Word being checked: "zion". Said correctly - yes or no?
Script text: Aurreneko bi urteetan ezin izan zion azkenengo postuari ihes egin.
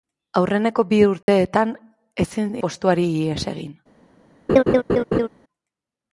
no